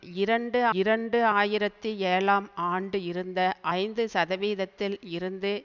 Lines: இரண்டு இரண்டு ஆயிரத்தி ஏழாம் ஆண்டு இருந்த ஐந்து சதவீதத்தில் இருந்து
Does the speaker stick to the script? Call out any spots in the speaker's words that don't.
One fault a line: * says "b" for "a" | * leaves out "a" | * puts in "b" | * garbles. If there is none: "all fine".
all fine